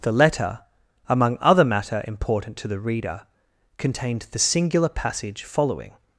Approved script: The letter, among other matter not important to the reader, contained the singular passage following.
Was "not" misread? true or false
true